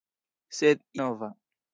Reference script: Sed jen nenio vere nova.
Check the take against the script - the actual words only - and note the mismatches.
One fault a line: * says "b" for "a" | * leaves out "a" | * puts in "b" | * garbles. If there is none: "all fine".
* leaves out "jen nenio vere"